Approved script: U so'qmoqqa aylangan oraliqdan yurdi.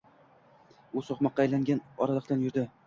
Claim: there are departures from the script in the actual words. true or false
false